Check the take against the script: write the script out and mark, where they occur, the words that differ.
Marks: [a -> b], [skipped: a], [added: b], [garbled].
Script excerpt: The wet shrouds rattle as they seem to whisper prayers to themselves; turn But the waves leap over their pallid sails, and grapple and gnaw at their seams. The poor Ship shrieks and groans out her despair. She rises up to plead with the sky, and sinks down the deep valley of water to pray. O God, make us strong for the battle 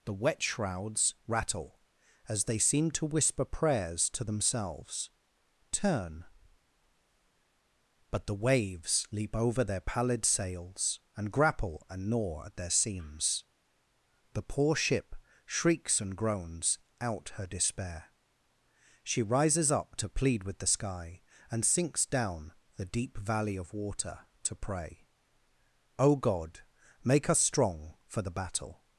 The wet shrouds rattle as they seem to whisper prayers to themselves; turn But the waves leap over their pallid sails, and grapple and gnaw at their seams. The poor Ship shrieks and groans out her despair. She rises up to plead with the sky, and sinks down the deep valley of water to pray. O God, make us strong for the battle